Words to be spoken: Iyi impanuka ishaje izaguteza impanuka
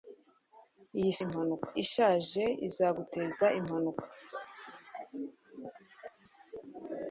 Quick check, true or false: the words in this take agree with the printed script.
true